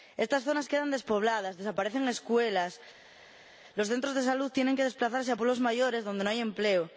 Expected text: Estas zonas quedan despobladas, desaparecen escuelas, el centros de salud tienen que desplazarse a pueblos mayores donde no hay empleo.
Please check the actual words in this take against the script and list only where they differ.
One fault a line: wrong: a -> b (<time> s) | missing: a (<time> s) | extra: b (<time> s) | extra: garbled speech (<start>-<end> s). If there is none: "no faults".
wrong: el -> los (3.8 s)